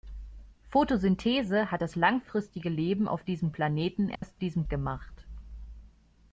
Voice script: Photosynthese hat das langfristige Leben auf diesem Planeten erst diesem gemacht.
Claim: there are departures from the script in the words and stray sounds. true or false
true